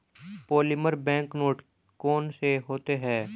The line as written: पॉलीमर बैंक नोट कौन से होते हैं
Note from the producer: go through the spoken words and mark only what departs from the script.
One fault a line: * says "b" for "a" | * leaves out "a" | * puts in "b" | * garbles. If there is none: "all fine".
all fine